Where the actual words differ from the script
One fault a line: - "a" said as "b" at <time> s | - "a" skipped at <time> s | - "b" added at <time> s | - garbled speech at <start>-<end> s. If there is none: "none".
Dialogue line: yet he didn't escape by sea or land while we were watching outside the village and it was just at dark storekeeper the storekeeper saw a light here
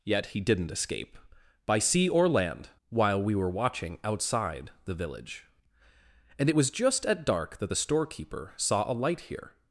- "storekeeper" said as "that" at 7.6 s